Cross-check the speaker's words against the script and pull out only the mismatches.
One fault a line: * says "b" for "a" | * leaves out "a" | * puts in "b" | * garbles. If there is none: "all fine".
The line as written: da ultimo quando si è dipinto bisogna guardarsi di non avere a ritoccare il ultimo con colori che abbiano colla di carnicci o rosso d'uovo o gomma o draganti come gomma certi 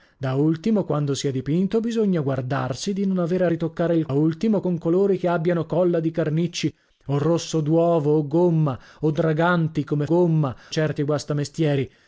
all fine